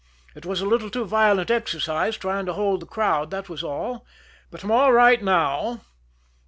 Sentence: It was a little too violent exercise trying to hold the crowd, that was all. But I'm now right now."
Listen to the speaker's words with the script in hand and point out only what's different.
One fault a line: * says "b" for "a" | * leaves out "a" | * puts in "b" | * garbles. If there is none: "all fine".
* says "all" for "now"